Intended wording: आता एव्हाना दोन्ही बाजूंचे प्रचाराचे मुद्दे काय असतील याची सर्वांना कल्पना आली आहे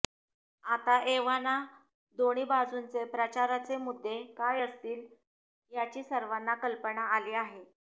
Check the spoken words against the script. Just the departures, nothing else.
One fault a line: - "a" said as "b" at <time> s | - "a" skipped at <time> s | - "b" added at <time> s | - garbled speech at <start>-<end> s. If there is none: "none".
none